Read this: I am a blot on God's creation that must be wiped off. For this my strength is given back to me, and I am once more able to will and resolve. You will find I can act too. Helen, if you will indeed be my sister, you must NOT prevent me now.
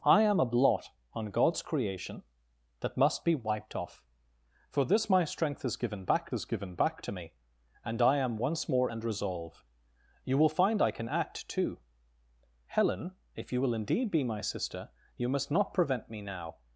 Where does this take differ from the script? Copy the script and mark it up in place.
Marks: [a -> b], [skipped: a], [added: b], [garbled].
I am a blot on God's creation that must be wiped off. For this my strength is given back [added: is given back] to me, and I am once more [skipped: able to will] and resolve. You will find I can act too. Helen, if you will indeed be my sister, you must NOT prevent me now.